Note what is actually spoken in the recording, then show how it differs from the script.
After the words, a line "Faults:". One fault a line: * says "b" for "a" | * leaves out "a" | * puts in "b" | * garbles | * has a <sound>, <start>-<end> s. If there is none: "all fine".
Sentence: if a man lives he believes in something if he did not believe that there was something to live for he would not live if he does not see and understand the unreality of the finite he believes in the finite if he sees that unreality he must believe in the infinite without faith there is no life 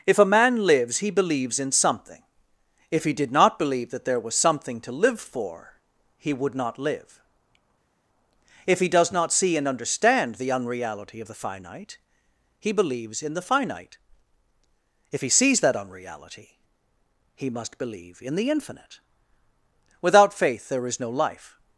if a man lives he believes in something if he did not believe that there was something to live for he would not live if he does not see and understand the unreality of the finite he believes in the finite if he sees that unreality he must believe in the infinite without faith there is no life
Faults:
all fine